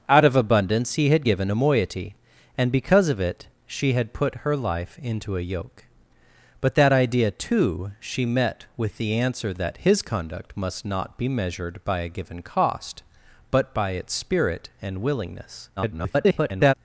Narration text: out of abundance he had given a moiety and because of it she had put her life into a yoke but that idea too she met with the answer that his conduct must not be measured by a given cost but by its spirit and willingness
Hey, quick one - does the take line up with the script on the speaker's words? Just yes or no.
no